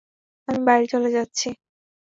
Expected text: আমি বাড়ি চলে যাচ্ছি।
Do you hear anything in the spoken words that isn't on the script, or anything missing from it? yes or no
no